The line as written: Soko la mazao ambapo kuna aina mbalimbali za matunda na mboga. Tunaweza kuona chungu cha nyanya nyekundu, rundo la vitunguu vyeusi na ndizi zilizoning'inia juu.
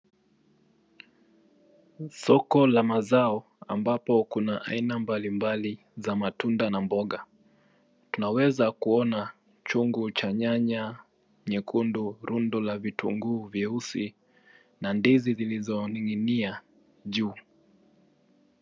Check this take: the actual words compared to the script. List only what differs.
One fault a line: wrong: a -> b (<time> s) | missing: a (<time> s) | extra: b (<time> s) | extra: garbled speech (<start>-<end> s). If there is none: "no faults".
no faults